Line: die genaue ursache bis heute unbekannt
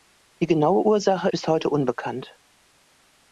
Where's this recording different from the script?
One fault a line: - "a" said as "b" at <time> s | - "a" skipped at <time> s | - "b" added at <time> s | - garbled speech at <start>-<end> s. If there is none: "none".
none